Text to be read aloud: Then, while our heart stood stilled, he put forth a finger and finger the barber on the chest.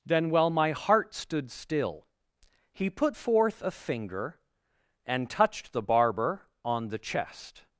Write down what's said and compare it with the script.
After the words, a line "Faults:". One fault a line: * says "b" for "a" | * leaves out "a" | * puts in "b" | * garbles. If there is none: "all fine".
Then, while my heart stood still, he put forth a finger and touched the barber on the chest.
Faults:
* says "my" for "our"
* says "still" for "stilled"
* says "touched" for "finger"